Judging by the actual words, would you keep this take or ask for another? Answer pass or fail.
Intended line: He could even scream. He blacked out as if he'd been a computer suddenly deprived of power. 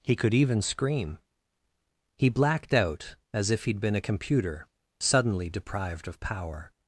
pass